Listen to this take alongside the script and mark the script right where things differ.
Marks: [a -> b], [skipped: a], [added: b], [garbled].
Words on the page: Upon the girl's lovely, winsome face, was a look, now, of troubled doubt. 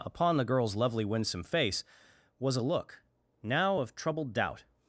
Upon the girl's lovely, winsome face, was a look, now, of troubled doubt.